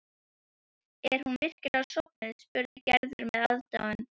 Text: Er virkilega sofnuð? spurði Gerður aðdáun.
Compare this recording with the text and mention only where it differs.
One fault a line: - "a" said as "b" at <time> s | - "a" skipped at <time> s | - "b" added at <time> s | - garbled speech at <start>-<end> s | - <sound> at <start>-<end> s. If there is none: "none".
- "hún" added at 1.2 s
- dropout at 2.7-2.8 s
- "með" added at 3.3 s